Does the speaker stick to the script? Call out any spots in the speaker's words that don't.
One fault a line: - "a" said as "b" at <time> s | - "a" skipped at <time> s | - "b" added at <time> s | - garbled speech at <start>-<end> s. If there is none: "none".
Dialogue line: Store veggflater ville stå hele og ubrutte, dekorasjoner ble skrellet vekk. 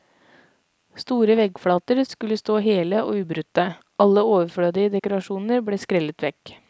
- "ville" said as "skulle" at 2.1 s
- "alle overflødige" added at 4.0 s